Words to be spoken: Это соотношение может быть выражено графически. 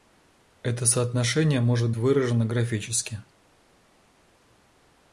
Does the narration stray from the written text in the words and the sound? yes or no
yes